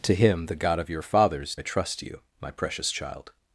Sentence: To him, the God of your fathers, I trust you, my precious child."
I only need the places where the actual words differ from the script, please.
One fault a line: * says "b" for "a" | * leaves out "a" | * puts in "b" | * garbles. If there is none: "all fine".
all fine